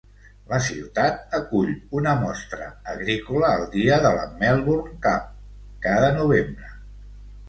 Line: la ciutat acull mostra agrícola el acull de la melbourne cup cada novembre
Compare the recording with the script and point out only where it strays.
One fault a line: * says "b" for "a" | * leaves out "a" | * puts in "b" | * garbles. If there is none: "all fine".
* puts in "una"
* says "dia" for "acull"